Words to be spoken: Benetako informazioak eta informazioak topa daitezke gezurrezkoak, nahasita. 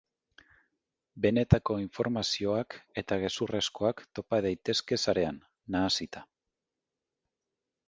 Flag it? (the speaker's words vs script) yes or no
yes